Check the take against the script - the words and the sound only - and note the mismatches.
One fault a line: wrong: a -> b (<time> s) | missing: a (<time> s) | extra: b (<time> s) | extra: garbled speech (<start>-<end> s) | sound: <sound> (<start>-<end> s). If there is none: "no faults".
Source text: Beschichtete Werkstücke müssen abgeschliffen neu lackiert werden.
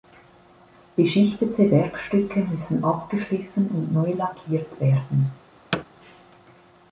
extra: und (3.7 s)
sound: thud (5.7-5.8 s)